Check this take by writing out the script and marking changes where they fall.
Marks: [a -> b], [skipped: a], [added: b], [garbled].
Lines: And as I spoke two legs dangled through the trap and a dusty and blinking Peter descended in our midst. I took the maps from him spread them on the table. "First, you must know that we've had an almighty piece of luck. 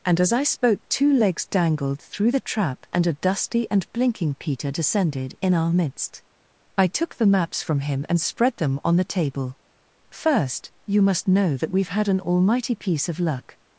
And as I spoke two legs dangled through the trap and a dusty and blinking Peter descended in our midst. I took the maps from him [added: and] spread them on the table. "First, you must know that we've had an almighty piece of luck.